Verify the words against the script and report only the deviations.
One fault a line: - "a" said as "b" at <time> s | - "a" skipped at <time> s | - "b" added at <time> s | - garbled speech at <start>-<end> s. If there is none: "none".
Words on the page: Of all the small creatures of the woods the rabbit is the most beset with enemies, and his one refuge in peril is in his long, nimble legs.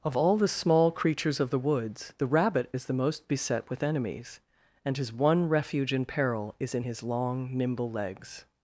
none